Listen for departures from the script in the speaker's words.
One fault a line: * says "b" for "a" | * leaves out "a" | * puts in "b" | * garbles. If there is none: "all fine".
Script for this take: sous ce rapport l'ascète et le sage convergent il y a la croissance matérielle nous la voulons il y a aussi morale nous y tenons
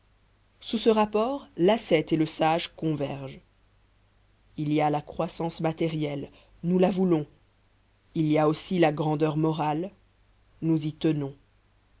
* puts in "la grandeur"